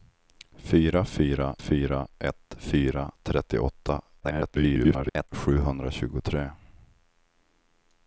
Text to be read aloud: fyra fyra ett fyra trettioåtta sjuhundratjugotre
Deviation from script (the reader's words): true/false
true